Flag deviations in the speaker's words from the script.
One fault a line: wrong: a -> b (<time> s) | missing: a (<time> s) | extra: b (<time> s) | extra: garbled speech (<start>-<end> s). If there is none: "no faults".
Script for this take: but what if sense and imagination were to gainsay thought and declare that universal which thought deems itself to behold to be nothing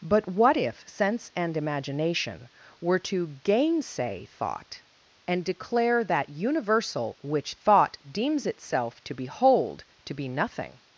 no faults